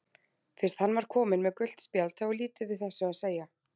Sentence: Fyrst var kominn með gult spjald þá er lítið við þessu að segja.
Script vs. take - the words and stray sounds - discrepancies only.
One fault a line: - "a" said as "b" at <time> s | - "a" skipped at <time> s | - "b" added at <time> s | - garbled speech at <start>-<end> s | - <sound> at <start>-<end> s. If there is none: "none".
- "hann" added at 0.8 s